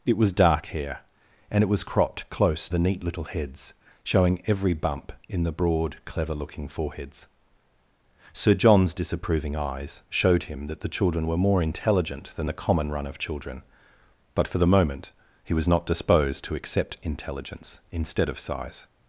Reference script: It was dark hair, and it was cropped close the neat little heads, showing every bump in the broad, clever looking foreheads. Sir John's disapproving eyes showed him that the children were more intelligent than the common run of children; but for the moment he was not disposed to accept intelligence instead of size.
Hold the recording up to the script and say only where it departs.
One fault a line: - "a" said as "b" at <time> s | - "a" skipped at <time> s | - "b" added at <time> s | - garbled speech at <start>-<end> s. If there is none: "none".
none